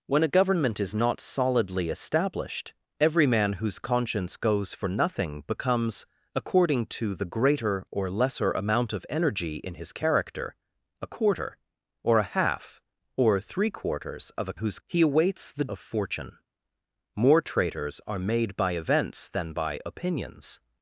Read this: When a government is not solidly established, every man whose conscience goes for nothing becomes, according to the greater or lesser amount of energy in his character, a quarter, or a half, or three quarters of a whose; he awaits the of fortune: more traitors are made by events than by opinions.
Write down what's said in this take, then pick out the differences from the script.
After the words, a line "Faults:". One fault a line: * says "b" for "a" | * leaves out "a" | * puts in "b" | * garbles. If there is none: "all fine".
When a government is not solidly established, every man whose conscience goes for nothing becomes, according to the greater or lesser amount of energy in his character, a quarter, or a half, or three quarters of a whose; he awaits the of fortune: more traitors are made by events than by opinions.
Faults:
all fine